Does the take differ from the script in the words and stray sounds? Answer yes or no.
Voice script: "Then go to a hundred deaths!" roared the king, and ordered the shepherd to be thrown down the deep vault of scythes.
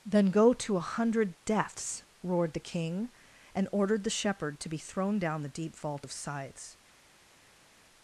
no